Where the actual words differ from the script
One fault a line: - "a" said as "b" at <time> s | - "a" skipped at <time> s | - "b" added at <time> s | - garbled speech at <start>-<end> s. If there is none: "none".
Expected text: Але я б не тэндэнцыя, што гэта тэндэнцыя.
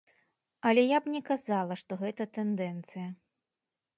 - "тэндэнцыя" said as "казала" at 1.3 s